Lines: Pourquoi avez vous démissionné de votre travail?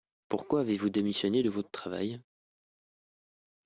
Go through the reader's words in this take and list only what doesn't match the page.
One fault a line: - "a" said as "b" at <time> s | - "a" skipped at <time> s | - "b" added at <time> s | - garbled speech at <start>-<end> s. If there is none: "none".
none